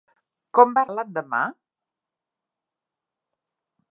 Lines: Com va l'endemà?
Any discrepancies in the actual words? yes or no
no